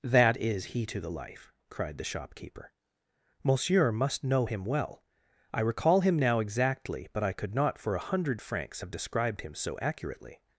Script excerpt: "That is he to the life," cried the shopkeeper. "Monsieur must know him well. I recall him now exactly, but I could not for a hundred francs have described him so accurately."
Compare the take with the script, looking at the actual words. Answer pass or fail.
pass